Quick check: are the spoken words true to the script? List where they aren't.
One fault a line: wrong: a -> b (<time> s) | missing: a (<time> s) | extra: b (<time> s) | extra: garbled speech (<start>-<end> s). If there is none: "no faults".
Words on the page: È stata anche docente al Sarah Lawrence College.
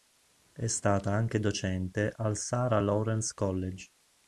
no faults